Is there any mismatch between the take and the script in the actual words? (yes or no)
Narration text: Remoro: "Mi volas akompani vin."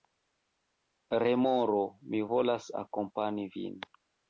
no